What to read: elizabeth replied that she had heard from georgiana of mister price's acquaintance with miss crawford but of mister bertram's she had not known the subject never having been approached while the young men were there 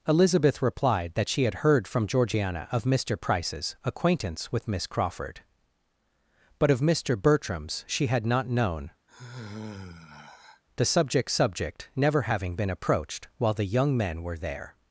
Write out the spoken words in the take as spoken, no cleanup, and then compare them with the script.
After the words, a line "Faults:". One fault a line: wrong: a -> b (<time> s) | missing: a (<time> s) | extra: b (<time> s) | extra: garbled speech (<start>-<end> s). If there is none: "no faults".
elizabeth replied that she had heard from georgiana of mister price's acquaintance with miss crawford but of mister bertram's she had not known the subject subject never having been approached while the young men were there
Faults:
extra: subject (11.3 s)